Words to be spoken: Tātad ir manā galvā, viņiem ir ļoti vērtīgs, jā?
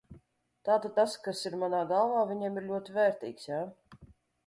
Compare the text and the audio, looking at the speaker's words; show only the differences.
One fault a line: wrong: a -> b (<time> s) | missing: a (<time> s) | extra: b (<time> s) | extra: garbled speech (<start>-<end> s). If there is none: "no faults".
extra: tas kas (1.0 s)